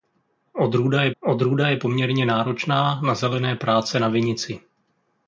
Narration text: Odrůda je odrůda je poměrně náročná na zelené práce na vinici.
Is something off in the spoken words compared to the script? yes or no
no